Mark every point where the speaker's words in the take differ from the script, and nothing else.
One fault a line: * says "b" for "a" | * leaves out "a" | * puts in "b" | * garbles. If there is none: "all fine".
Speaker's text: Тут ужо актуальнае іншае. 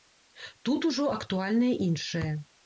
all fine